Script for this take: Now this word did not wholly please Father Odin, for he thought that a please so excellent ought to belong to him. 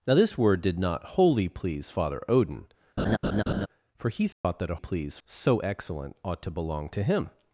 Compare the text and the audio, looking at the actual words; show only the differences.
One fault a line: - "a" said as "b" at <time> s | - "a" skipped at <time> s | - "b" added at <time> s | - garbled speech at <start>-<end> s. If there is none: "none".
none